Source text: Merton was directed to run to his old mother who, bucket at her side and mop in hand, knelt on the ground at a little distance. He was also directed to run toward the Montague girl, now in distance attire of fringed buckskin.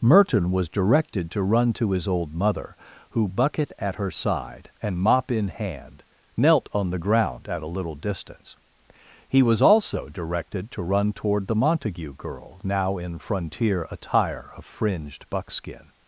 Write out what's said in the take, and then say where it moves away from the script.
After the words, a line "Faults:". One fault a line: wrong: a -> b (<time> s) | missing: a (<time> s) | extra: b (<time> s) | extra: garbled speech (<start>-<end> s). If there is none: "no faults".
Merton was directed to run to his old mother who, bucket at her side and mop in hand, knelt on the ground at a little distance. He was also directed to run toward the Montague girl, now in frontier attire of fringed buckskin.
Faults:
wrong: distance -> frontier (13.2 s)